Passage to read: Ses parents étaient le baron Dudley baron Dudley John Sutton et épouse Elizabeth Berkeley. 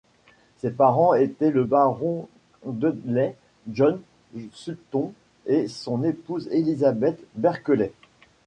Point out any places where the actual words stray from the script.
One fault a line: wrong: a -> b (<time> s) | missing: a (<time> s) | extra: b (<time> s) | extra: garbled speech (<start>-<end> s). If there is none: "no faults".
missing: baron Dudley (3.3 s)
extra: son (5.7 s)